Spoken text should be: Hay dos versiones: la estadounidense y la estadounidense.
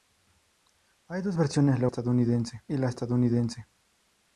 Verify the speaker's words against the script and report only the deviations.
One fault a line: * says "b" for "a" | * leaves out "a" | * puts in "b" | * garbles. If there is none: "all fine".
all fine